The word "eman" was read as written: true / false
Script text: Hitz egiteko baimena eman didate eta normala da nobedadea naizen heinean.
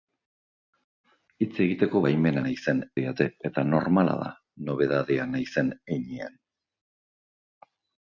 false